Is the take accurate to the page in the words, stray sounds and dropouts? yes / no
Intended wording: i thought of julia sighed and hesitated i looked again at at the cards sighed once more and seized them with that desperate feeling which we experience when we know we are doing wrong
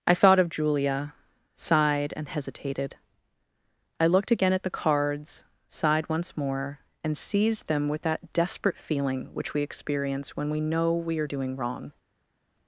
no